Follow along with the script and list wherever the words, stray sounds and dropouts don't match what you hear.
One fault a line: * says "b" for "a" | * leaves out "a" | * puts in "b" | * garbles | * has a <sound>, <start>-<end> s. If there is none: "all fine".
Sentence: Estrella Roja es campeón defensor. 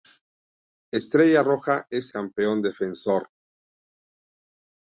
all fine